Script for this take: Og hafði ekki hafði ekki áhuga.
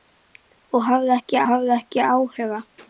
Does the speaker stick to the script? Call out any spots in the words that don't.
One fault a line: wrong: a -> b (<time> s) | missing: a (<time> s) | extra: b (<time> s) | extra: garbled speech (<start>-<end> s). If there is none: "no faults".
no faults